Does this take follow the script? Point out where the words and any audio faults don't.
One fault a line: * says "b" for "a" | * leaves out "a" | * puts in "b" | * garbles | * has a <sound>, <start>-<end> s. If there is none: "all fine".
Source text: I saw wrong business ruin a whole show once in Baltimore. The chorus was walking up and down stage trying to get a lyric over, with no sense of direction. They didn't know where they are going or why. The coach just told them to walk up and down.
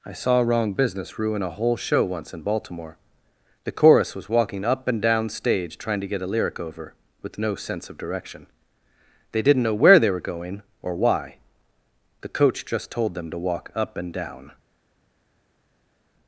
* says "were" for "are"